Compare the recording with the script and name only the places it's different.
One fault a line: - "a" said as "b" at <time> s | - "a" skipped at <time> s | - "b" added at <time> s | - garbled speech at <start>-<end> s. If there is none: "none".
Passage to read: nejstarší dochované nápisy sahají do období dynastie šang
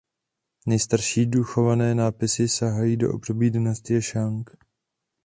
none